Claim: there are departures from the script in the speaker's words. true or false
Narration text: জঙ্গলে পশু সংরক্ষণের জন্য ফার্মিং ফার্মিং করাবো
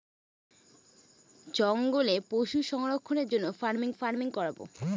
false